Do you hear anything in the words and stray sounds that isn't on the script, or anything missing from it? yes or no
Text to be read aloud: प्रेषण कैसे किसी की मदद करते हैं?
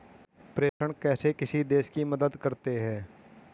yes